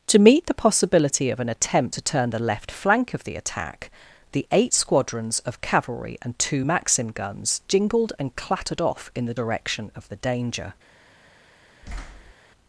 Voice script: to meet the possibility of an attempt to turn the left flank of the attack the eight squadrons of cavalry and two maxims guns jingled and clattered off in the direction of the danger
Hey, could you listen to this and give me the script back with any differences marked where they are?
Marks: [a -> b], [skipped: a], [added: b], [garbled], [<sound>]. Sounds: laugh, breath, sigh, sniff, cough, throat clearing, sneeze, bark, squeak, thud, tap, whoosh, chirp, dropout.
to meet the possibility of an attempt to turn the left flank of the attack the eight squadrons of cavalry and two [maxims -> maxim] guns jingled and clattered off in the direction of the danger [thud]